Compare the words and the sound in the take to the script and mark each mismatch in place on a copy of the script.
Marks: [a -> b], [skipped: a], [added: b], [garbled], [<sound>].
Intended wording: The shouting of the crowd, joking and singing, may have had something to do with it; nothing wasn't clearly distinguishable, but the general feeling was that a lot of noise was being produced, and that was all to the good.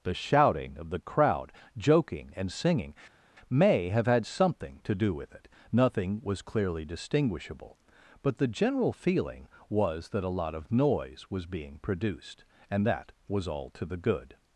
The shouting of the crowd, joking and singing, may have had something to do with it; nothing [wasn't -> was] clearly distinguishable, but the general feeling was that a lot of noise was being produced, and that was all to the good.